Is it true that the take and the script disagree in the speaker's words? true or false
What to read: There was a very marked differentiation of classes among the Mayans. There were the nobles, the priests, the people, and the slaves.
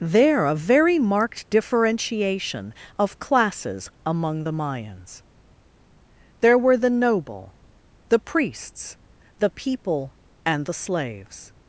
true